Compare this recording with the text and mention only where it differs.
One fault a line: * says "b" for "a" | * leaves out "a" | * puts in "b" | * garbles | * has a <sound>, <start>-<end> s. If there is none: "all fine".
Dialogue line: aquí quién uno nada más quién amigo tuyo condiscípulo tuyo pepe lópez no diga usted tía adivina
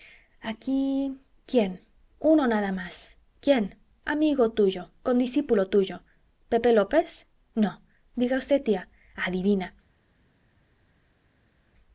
all fine